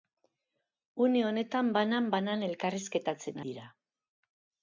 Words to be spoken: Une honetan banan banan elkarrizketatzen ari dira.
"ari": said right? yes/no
no